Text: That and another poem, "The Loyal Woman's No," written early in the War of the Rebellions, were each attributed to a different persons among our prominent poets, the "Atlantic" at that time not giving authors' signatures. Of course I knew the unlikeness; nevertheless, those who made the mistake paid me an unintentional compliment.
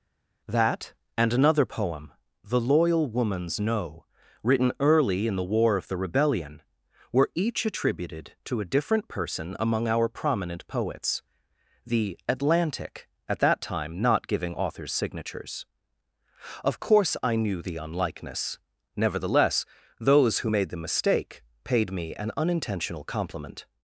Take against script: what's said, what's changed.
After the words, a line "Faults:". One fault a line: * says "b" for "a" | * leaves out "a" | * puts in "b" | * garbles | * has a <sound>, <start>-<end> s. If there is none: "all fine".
That and another poem, "The Loyal Woman's No," written early in the War of the Rebellion, were each attributed to a different person among our prominent poets, the "Atlantic" at that time not giving authors' signatures. Of course I knew the unlikeness; nevertheless, those who made the mistake paid me an unintentional compliment.
Faults:
* says "Rebellion" for "Rebellions"
* says "person" for "persons"